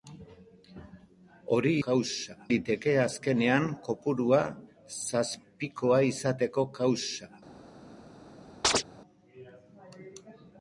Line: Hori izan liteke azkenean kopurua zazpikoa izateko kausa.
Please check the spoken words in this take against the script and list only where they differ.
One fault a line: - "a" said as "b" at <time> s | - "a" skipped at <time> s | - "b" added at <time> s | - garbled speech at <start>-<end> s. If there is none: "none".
- "izan" said as "kausa" at 1.9 s